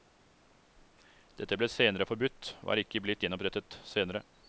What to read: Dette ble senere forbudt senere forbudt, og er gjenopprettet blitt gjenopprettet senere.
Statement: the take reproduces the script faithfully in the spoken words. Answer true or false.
false